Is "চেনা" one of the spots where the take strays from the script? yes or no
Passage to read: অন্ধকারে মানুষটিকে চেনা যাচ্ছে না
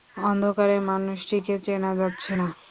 no